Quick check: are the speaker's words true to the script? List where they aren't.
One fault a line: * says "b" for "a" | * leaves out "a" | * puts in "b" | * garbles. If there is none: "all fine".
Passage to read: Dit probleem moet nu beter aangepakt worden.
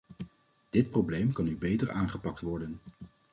* says "kan" for "moet"